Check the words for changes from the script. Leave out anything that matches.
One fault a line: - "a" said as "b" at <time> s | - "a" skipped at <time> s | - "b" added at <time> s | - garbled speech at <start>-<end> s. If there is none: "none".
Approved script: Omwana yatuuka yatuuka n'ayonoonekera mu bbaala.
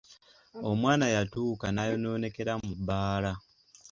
- "yatuuka" skipped at 1.7 s